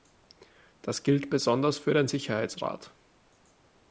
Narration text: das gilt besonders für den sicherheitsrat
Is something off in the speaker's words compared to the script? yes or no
no